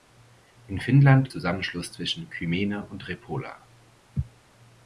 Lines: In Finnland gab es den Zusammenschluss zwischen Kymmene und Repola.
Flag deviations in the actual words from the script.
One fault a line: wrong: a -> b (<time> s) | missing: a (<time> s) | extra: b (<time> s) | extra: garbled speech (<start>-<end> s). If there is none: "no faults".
missing: gab es den (1.3 s)